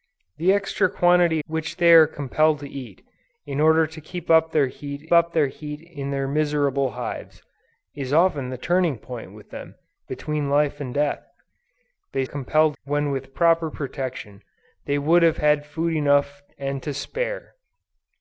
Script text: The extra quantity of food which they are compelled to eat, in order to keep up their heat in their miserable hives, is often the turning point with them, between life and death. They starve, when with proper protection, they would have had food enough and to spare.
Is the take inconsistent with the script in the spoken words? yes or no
yes